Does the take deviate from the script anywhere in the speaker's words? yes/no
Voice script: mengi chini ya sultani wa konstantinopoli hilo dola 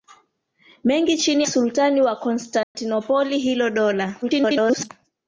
yes